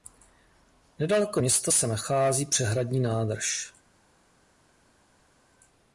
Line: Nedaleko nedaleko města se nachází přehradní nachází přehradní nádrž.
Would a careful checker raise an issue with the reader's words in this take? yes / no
yes